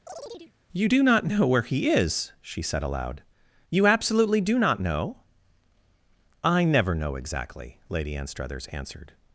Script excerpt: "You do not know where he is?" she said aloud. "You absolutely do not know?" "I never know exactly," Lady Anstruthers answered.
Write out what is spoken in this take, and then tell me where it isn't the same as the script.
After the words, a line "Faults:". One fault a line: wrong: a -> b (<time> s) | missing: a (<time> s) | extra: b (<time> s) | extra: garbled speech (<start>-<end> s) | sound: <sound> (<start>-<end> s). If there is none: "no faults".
"You do not know where he is?" she said aloud. "You absolutely do not know?" "I never know exactly," Lady Anstruthers answered.
Faults:
sound: chirp (0.1-0.5 s)